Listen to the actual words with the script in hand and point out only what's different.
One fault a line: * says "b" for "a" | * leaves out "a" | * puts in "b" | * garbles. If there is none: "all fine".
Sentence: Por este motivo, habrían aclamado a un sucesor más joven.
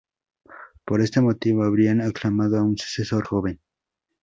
* leaves out "más"